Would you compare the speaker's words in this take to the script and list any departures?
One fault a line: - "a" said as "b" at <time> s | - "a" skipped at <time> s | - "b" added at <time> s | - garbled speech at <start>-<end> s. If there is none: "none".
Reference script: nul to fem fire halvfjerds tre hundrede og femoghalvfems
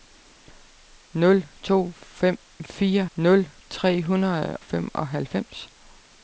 - "halvfjerds" said as "nul" at 3.2 s
- "og" skipped at 4.6 s